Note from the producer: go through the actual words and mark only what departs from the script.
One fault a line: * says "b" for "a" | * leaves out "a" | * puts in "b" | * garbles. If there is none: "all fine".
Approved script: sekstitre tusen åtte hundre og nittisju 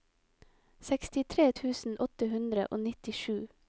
all fine